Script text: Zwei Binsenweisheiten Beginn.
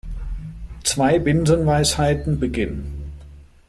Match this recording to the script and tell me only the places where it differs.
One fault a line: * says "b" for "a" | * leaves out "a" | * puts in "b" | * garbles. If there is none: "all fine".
all fine